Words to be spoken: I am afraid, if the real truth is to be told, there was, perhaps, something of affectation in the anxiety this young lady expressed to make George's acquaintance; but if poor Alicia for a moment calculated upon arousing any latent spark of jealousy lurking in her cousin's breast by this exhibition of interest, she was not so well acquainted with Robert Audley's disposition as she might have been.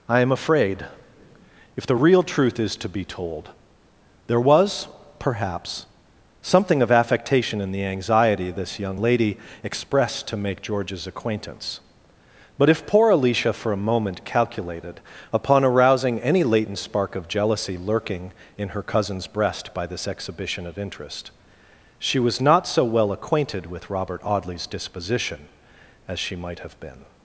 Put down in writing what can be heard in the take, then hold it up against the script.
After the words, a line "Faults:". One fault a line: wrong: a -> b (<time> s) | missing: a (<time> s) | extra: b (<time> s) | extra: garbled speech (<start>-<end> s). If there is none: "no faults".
I am afraid, if the real truth is to be told, there was, perhaps, something of affectation in the anxiety this young lady expressed to make George's acquaintance; but if poor Alicia for a moment calculated upon arousing any latent spark of jealousy lurking in her cousin's breast by this exhibition of interest, she was not so well acquainted with Robert Audley's disposition as she might have been.
Faults:
no faults